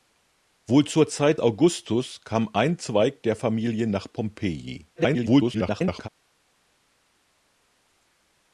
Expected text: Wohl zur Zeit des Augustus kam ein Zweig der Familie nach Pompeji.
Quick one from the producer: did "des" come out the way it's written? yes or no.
no